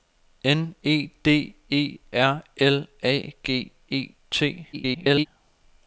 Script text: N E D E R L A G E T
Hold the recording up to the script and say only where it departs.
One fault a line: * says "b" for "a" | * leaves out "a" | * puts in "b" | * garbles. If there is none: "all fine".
* garbles